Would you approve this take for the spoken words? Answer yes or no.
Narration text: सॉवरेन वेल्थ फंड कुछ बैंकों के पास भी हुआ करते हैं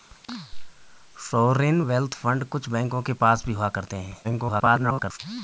no